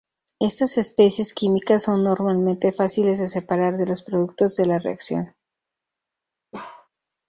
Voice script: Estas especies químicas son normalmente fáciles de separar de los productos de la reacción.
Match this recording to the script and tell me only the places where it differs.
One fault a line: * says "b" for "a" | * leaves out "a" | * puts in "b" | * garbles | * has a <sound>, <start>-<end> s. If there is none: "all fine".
* has a bark, 6.5-6.9 s